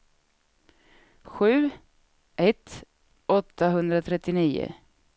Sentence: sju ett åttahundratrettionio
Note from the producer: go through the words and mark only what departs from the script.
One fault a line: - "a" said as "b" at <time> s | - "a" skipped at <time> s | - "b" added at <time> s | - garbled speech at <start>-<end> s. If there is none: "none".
none